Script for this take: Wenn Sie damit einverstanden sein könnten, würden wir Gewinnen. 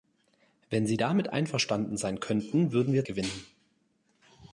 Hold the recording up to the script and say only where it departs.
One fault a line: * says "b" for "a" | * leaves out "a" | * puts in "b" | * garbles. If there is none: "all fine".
all fine